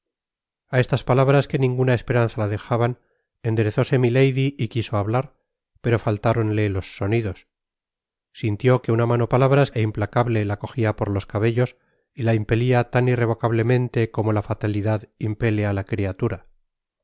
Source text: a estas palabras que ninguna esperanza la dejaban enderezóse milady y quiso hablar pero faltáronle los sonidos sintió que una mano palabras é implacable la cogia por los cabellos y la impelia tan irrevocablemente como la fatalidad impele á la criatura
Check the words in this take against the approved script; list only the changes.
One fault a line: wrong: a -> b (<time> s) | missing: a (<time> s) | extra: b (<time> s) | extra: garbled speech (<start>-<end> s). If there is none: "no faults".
no faults